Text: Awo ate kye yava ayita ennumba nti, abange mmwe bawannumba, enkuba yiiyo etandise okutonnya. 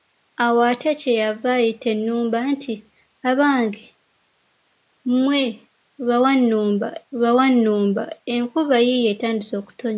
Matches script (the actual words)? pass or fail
fail